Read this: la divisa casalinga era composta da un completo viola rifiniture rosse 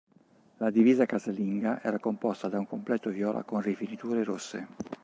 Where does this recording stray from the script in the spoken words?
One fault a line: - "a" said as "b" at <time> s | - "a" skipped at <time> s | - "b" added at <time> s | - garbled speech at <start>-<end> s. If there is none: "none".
- "con" added at 3.4 s